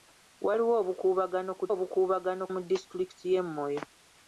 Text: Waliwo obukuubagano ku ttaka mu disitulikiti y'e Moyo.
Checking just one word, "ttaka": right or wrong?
wrong